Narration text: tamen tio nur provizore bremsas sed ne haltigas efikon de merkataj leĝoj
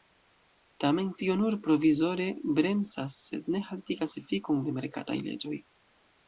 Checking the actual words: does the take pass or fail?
pass